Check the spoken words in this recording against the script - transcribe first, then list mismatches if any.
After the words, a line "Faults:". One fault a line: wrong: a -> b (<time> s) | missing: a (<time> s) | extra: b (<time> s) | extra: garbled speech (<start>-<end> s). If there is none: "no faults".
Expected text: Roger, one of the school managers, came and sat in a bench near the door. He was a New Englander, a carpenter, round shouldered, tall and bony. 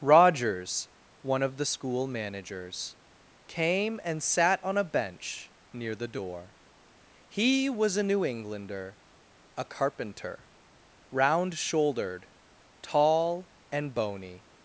Rogers, one of the school managers, came and sat on a bench near the door. He was a New Englander, a carpenter, round shouldered, tall and bony.
Faults:
wrong: Roger -> Rogers (0.0 s)
wrong: in -> on (4.6 s)